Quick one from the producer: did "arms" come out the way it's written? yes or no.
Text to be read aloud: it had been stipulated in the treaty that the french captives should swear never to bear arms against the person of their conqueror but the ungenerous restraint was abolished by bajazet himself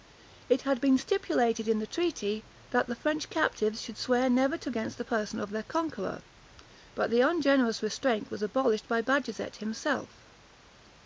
no